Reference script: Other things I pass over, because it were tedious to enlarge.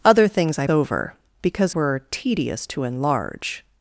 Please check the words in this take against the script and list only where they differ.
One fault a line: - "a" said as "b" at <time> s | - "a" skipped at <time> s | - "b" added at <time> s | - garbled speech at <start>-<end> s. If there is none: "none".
- "pass" skipped at 0.7 s
- "it" skipped at 1.7 s